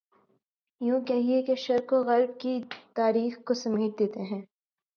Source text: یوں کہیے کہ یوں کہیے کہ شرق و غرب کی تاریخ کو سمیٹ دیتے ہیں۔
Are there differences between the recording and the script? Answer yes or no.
yes